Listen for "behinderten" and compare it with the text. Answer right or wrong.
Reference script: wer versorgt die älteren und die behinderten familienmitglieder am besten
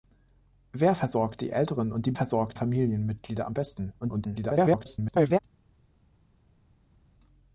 wrong